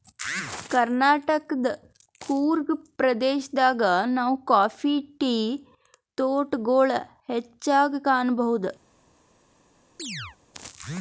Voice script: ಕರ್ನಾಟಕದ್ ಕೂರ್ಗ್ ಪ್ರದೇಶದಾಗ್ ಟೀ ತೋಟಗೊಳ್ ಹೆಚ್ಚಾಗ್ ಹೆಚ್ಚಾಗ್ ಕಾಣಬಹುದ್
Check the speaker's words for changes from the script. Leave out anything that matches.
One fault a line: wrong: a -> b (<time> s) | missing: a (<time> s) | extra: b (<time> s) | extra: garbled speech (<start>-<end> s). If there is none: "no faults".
extra: ನಾವ್ ಕಾಫಿ (4.1 s)
missing: ಹೆಚ್ಚಾಗ್ (8.0 s)